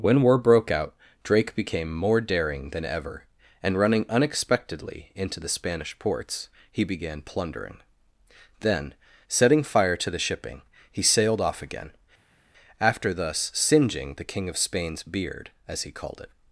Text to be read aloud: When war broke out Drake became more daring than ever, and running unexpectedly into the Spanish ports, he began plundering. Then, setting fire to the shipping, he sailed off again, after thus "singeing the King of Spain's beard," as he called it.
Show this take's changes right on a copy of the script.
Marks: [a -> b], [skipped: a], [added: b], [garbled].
When war broke out Drake became more daring than ever, and running unexpectedly into the Spanish ports, he began plundering. Then, setting fire to the shipping, he sailed off again, after thus "singeing the King of Spain's beard," as he called it.